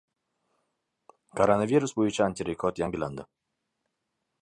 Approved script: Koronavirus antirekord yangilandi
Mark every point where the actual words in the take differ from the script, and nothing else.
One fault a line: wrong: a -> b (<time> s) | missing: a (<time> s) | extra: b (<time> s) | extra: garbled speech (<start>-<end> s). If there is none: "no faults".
extra: bo‘yicha (2.0 s)